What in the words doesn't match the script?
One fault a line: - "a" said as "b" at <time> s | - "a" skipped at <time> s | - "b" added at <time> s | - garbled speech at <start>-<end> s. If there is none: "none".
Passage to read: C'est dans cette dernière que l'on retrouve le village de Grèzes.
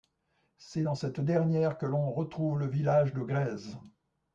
none